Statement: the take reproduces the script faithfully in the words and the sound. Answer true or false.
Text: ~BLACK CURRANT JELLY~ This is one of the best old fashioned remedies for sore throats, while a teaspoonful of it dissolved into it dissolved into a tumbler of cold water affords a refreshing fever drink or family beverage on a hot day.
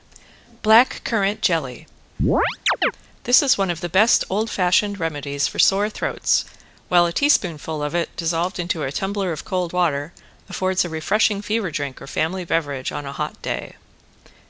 false